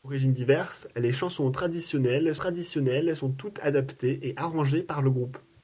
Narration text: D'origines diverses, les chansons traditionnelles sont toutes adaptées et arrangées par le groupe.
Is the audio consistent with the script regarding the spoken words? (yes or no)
no